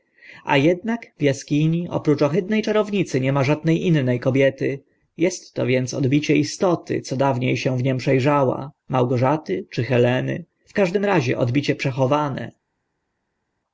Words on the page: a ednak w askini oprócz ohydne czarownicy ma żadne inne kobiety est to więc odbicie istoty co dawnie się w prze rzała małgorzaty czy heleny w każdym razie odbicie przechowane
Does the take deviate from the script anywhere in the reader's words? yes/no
yes